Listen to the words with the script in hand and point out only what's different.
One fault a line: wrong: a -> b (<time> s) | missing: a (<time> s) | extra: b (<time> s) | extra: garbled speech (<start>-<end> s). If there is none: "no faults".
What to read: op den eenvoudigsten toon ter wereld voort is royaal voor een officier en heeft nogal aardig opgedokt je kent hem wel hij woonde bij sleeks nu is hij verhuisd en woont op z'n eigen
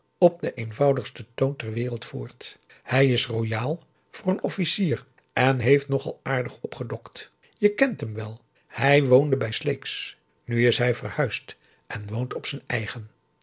extra: hij (2.8 s)